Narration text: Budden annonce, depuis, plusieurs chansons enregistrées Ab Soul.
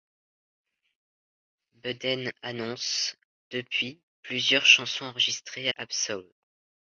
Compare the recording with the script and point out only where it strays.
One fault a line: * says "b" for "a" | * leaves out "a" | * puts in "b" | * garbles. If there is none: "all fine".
all fine